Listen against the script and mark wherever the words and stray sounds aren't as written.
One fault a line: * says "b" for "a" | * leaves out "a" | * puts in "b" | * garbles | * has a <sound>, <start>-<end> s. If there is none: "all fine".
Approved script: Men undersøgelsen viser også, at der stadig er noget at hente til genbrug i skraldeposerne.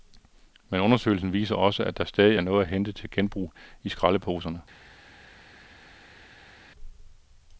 all fine